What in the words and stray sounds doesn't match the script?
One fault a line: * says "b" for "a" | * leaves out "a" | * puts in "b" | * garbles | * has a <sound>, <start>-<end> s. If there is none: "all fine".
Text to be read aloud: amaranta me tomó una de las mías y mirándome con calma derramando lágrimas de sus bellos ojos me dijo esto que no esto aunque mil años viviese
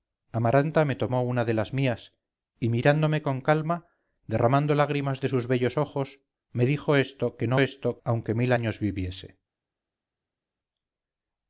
all fine